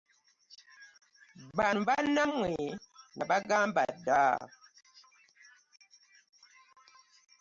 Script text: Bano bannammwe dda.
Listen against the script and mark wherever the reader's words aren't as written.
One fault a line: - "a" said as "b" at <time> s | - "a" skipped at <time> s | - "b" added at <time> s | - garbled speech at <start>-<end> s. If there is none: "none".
- "nabagamba" added at 3.2 s